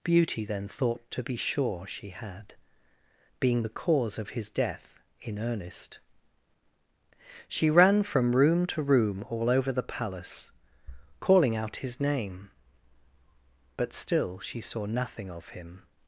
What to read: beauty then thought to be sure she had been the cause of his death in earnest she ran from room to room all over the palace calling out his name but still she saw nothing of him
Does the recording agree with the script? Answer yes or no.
no